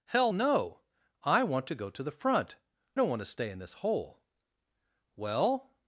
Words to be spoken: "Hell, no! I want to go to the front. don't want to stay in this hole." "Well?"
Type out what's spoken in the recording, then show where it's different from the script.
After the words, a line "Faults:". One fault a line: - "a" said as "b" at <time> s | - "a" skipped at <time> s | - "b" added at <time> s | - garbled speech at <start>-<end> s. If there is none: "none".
"Hell, no! I want to go to the front. don't want to stay in this hole." "Well?"
Faults:
none